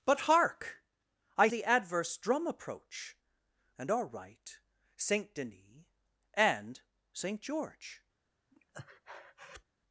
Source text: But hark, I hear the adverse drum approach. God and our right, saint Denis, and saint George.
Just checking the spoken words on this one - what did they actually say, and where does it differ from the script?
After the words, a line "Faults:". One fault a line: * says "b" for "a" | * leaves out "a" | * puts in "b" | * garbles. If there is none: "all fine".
But hark, I the adverse drum approach. And our right, saint Denis, and saint George.
Faults:
* leaves out "hear"
* leaves out "God"